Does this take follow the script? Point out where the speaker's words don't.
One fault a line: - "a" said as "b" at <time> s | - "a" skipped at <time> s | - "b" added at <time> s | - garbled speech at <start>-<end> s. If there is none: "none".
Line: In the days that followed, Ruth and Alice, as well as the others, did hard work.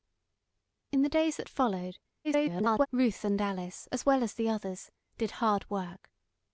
- garbled speech at 2.2-2.9 s